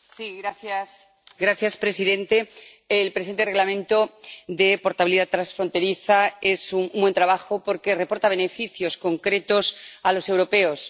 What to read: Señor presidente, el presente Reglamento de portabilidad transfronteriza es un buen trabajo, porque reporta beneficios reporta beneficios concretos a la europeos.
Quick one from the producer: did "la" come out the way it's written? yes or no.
no